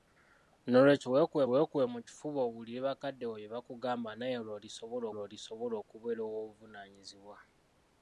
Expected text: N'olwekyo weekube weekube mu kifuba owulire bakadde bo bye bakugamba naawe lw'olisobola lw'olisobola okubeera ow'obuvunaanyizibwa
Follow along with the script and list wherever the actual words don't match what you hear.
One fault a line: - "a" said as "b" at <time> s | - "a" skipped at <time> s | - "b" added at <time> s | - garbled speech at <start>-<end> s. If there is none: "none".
none